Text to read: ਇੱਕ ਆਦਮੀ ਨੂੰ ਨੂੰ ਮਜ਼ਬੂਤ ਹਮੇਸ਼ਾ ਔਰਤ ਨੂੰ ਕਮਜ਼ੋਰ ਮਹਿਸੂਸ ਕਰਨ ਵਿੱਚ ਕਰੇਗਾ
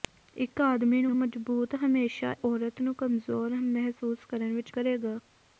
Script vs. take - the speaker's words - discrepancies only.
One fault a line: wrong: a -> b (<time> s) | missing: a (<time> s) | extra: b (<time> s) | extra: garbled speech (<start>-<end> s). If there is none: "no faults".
no faults